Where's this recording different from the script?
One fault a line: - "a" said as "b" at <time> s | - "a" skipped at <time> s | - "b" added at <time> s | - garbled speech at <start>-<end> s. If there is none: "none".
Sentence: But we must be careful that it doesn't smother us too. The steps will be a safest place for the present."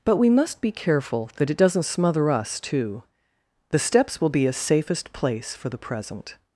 none